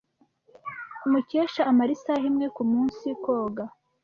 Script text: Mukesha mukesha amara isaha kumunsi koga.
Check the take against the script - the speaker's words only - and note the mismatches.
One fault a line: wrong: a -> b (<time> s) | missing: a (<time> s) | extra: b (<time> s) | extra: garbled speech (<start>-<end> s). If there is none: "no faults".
missing: mukesha (1.6 s)
extra: imwe (2.3 s)